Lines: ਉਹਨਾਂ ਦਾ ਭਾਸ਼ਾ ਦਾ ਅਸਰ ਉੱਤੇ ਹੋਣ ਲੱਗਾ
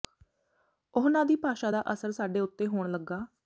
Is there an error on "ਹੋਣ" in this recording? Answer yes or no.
no